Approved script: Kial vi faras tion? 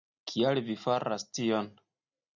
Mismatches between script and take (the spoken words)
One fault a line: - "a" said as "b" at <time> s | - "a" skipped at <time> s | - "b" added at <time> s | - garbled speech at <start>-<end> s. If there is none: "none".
none